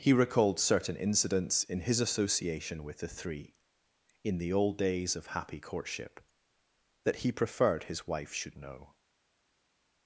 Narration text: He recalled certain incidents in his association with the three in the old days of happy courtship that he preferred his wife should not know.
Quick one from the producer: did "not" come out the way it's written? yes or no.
no